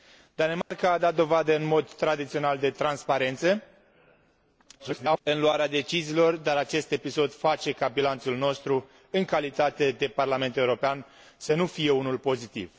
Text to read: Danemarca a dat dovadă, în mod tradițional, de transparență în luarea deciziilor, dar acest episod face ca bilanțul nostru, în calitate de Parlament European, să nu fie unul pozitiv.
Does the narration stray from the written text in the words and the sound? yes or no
yes